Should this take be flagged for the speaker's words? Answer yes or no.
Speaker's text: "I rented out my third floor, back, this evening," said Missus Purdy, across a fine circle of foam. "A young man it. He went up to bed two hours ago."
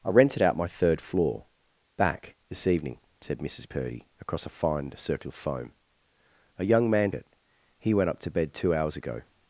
no